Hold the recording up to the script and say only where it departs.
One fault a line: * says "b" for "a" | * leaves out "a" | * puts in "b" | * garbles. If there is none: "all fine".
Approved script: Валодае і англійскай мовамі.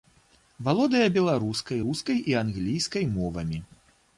* puts in "беларускай рускай"